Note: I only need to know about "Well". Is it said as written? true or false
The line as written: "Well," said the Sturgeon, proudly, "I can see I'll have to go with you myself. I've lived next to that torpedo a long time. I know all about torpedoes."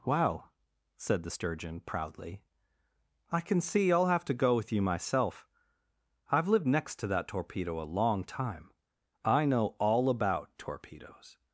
false